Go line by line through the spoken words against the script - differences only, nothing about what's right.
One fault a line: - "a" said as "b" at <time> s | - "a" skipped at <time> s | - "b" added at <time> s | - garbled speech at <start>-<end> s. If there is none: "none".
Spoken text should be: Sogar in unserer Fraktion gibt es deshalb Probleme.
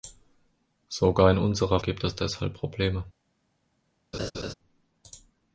- "Fraktion" skipped at 1.8 s